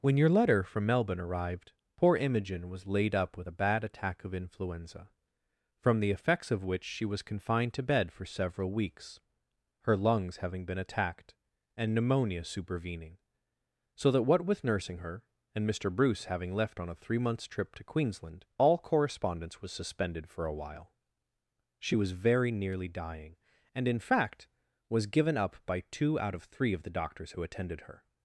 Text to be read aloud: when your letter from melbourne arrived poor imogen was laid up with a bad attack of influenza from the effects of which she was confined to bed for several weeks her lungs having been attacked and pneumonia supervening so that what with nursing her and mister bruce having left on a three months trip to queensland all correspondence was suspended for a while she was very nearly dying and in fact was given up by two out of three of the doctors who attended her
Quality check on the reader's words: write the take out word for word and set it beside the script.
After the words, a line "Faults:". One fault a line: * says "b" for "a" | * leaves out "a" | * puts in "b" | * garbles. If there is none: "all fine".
when your letter from melbourne arrived poor imogen was laid up with a bad attack of influenza from the effects of which she was confined to bed for several weeks her lungs having been attacked and pneumonia supervening so that what with nursing her and mister bruce having left on a three months trip to queensland all correspondence was suspended for a while she was very nearly dying and in fact was given up by two out of three of the doctors who attended her
Faults:
all fine